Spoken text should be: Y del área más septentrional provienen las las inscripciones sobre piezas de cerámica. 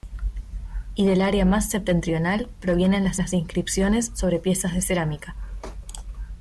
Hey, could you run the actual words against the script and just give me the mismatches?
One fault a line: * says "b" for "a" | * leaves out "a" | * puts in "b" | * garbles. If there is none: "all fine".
all fine